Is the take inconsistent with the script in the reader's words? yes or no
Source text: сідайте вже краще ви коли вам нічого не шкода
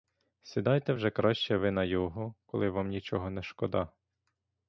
yes